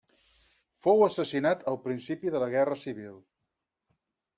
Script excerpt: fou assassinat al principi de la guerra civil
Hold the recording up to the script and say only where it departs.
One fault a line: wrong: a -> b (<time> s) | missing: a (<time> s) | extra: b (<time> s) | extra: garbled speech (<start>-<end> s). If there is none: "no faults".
no faults